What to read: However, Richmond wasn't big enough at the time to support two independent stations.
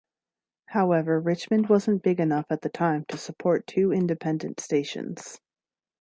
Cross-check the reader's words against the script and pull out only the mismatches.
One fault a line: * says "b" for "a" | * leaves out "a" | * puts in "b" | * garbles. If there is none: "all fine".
all fine